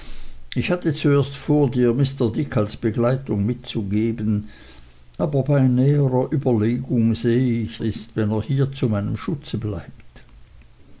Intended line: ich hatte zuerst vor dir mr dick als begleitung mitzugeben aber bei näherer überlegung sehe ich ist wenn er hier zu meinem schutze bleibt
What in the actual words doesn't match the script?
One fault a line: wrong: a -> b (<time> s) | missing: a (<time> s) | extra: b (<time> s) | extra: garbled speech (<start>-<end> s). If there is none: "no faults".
no faults